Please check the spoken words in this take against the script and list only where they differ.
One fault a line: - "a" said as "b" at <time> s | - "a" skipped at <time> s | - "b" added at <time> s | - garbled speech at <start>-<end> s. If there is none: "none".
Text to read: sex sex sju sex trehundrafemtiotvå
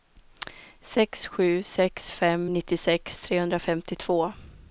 - "sju" added at 1.3 s
- "sju sex" said as "fem nittiosex" at 2.1 s